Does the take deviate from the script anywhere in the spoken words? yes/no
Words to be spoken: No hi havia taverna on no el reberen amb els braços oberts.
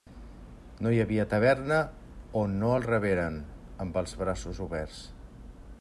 no